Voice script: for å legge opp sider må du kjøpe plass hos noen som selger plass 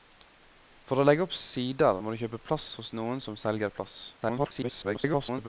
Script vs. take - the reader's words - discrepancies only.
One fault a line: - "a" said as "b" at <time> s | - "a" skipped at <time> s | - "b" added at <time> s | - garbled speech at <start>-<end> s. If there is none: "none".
- garbled speech at 4.2-5.5 s